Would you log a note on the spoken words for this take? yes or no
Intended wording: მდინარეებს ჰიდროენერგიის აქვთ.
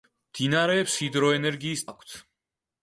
no